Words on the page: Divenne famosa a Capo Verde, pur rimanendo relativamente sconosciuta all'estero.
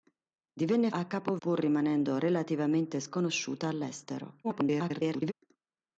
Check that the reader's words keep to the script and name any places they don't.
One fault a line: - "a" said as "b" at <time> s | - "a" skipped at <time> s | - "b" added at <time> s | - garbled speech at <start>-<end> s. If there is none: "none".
- "famosa" skipped at 0.9 s
- "Verde" skipped at 1.4 s
- garbled speech at 4.4-5.3 s